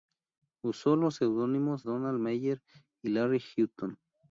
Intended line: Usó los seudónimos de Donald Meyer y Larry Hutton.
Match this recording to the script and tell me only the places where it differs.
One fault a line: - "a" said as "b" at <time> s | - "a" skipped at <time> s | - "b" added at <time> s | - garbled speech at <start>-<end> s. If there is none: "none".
- "de" skipped at 1.9 s